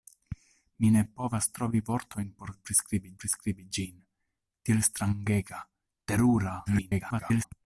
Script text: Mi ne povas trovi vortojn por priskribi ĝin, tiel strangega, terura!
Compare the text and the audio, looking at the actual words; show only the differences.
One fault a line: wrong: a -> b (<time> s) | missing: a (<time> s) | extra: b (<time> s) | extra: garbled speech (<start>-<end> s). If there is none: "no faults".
extra: priskribi (3.2 s)
extra: garbled speech (6.7-7.5 s)